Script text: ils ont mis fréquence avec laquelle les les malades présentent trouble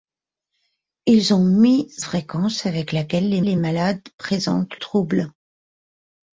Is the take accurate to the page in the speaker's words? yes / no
yes